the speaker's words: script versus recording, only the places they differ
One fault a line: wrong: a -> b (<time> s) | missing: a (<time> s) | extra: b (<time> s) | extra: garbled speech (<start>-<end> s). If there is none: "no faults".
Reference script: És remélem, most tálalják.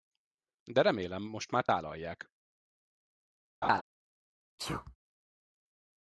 wrong: És -> De (0.6 s)
extra: már (1.5 s)